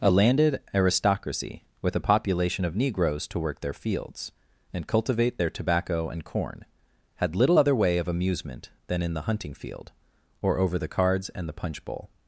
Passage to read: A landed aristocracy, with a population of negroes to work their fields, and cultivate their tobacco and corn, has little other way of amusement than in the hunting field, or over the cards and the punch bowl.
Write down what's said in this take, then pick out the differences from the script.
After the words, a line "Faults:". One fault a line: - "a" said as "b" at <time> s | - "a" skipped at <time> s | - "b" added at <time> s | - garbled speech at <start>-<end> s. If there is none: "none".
A landed aristocracy, with a population of negroes to work their fields, and cultivate their tobacco and corn, had little other way of amusement than in the hunting field, or over the cards and the punch bowl.
Faults:
- "has" said as "had" at 7.2 s